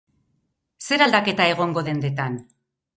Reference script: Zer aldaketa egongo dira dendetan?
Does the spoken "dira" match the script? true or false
false